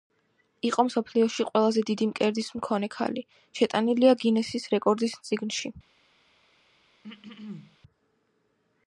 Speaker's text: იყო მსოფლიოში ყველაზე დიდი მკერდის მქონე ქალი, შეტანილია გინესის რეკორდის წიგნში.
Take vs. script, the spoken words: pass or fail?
pass